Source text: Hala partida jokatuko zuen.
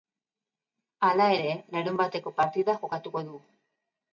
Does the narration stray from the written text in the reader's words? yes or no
yes